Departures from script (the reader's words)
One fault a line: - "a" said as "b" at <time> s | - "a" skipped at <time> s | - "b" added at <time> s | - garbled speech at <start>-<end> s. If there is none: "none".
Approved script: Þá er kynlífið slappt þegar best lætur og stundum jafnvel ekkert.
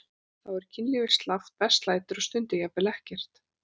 - "þegar" skipped at 1.5 s